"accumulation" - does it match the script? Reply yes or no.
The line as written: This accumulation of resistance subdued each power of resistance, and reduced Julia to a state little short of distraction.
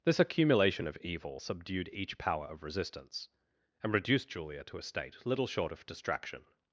yes